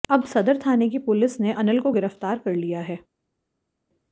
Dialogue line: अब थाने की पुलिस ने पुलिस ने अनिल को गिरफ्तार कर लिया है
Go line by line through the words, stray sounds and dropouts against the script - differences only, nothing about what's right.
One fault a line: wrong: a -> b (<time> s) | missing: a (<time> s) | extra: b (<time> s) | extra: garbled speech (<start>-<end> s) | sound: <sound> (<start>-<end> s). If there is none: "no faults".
extra: सदर (0.2 s)
missing: पुलिस ने (1.5 s)